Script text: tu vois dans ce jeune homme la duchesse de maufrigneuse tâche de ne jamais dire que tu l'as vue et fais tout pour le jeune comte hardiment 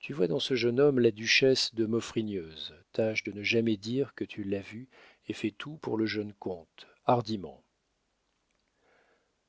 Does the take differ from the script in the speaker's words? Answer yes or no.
no